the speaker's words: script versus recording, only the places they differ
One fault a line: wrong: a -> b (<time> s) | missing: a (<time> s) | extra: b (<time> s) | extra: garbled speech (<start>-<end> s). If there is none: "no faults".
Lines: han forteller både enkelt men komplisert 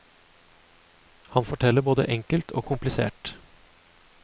wrong: men -> og (2.5 s)